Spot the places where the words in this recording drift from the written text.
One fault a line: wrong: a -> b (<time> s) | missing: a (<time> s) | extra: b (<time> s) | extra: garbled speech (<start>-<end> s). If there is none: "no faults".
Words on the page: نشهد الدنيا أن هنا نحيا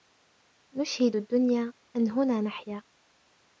no faults